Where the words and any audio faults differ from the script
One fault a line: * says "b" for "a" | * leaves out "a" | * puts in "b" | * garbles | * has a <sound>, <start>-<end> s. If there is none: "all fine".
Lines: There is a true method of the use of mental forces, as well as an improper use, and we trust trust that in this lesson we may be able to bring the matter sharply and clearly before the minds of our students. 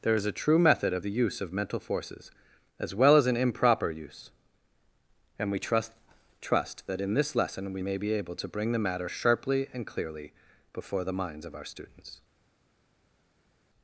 all fine